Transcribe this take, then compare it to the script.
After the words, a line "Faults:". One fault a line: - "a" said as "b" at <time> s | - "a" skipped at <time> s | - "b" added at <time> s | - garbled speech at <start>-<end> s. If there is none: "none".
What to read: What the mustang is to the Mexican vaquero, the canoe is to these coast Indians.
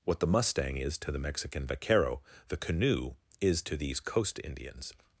What the mustang is to the Mexican vaquero, the canoe is to these coast Indians.
Faults:
none